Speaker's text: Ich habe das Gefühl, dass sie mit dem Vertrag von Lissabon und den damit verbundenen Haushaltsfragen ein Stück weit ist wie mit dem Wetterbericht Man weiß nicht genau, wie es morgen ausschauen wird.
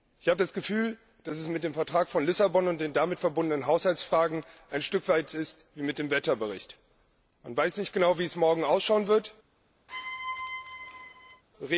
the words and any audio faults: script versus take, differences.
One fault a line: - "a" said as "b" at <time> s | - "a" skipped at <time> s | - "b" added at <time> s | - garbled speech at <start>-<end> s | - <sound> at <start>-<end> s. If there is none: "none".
- "sie" said as "es" at 1.4 s
- squeak at 9.9-11.4 s